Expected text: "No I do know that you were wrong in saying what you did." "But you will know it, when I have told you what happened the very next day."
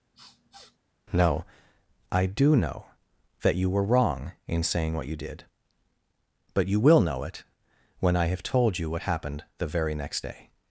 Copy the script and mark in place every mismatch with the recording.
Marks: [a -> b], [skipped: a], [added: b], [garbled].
"No I do know that you were wrong in saying what you did." "But you will know it, when I have told you what happened the very next day."